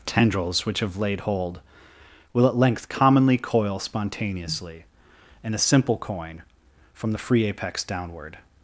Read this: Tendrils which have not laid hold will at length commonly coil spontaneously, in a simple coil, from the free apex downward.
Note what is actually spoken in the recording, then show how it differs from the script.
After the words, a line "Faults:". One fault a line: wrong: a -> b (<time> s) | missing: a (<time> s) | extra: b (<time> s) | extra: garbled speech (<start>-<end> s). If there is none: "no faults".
Tendrils which have laid hold will at length commonly coil spontaneously, in a simple coin, from the free apex downward.
Faults:
missing: not (1.0 s)
wrong: coil -> coin (6.0 s)